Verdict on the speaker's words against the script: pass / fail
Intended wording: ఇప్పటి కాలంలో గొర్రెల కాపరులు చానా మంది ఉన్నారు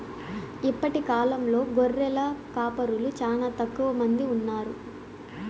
fail